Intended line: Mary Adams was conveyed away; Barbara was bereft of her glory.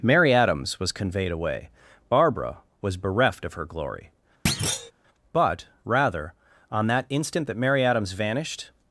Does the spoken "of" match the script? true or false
true